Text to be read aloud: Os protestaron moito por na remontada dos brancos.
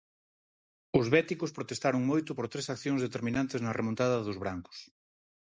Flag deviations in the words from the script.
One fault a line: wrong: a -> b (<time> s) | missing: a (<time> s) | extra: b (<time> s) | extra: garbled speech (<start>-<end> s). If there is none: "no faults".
extra: béticos (1.1 s)
extra: tres accións determinantes (2.5 s)